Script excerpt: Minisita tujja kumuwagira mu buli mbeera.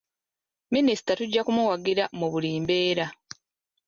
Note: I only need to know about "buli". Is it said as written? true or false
true